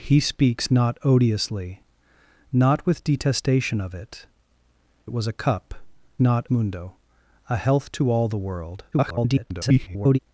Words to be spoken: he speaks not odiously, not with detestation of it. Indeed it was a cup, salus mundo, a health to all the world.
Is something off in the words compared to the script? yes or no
yes